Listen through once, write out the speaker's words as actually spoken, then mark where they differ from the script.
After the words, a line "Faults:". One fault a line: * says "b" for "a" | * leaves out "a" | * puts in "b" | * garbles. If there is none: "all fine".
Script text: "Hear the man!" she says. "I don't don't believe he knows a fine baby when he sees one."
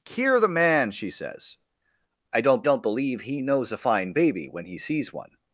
"Hear the man!" she says. "I don't don't believe he knows a fine baby when he sees one."
Faults:
all fine